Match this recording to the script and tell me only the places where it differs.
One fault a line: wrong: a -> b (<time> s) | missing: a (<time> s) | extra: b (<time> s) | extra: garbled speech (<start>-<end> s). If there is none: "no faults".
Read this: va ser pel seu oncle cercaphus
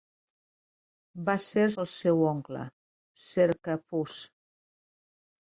no faults